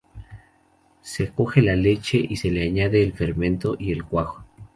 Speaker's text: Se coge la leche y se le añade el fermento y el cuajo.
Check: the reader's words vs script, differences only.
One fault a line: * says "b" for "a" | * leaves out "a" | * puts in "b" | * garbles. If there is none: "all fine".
all fine